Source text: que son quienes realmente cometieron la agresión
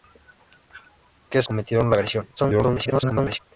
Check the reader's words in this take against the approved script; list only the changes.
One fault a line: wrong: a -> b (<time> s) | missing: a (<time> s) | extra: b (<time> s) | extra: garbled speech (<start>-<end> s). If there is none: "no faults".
missing: son quienes realmente (1.4 s)
extra: garbled speech (2.4-3.4 s)